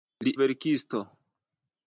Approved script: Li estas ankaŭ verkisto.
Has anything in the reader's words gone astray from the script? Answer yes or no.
yes